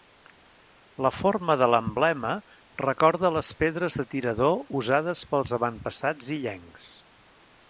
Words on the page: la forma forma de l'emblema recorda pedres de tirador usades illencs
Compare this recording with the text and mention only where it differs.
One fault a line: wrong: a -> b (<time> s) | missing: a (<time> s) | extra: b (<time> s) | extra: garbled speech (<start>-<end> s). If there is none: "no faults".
missing: forma (1.6 s)
extra: les (3.4 s)
extra: pels avantpassats (5.4 s)